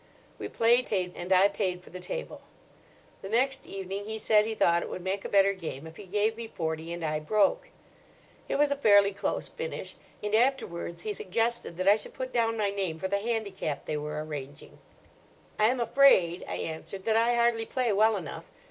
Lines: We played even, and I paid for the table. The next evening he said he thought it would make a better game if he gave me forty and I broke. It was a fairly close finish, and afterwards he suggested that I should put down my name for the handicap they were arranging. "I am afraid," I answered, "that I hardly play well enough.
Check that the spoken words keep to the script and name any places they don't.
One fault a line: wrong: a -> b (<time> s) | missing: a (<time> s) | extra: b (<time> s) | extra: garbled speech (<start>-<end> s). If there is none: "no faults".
wrong: even -> paid (0.8 s)